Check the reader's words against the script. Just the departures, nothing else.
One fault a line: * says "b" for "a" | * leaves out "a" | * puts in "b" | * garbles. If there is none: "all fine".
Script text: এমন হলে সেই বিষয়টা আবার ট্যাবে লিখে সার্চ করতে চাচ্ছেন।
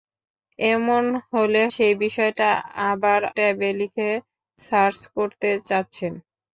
all fine